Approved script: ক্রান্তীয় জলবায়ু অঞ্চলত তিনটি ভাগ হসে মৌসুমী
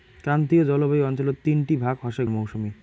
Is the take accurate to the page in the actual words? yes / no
yes